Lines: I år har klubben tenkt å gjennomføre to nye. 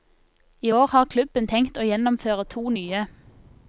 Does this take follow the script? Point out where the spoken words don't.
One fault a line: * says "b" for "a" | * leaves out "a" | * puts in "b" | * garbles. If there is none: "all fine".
all fine